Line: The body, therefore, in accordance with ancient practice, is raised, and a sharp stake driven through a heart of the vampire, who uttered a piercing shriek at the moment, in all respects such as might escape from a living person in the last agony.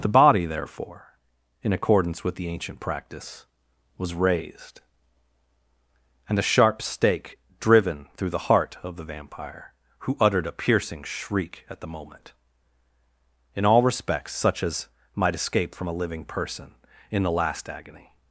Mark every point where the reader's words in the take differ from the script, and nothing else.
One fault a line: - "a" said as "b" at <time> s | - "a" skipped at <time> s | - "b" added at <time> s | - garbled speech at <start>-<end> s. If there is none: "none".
- "the" added at 2.4 s
- "is" said as "was" at 4.0 s
- "a" said as "the" at 8.3 s